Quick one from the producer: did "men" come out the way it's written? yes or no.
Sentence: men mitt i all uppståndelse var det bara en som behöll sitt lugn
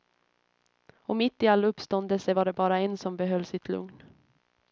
no